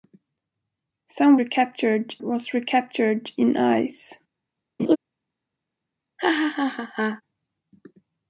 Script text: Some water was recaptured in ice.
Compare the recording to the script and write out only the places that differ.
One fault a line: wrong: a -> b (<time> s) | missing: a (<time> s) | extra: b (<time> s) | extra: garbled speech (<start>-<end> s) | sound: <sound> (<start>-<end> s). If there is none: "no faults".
wrong: water -> recaptured (1.4 s)
sound: laugh (4.8-5.0 s)
sound: laugh (6.2-7.2 s)